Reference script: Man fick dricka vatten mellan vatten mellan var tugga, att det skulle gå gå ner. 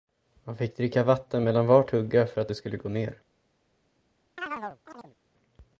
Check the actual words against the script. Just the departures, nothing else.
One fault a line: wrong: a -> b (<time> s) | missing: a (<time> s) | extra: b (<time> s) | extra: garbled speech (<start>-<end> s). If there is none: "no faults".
missing: vatten mellan (1.7 s)
extra: för (2.3 s)
missing: gå (2.9 s)